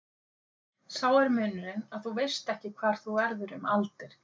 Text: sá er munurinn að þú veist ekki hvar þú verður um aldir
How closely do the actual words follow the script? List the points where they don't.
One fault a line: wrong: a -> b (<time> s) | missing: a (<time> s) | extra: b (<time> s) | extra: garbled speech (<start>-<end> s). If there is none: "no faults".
no faults